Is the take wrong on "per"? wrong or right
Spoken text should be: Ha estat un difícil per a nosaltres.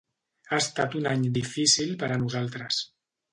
right